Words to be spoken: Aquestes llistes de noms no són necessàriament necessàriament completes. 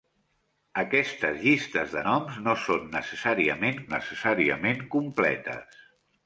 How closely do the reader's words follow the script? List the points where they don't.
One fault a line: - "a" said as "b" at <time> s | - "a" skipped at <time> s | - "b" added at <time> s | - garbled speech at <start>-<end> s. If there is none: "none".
none